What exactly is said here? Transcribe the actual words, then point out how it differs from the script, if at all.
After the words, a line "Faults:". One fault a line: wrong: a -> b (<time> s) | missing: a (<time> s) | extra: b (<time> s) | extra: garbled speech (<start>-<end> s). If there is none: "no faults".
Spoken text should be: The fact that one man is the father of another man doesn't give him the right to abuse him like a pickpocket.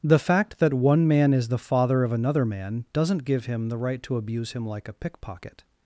The fact that one man is the father of another man doesn't give him the right to abuse him like a pickpocket.
Faults:
no faults